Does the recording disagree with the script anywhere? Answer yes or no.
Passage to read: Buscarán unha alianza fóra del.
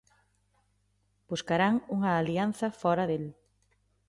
no